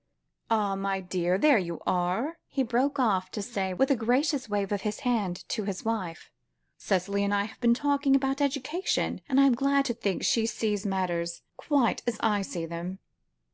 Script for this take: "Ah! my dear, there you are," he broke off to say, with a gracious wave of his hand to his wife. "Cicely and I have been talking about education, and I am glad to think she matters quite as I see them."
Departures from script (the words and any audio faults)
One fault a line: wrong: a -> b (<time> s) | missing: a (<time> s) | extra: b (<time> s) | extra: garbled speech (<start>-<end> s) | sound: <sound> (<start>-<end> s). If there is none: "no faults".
extra: sees (10.4 s)